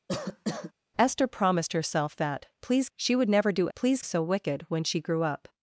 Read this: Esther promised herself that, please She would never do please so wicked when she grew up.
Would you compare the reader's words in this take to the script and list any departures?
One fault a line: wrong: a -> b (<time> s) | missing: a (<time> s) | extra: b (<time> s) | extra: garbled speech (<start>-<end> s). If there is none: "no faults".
no faults